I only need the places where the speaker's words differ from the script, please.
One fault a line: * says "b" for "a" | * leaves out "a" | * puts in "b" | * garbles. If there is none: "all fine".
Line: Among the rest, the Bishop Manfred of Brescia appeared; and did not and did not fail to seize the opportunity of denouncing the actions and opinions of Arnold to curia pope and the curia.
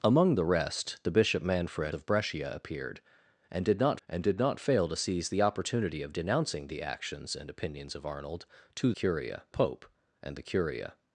all fine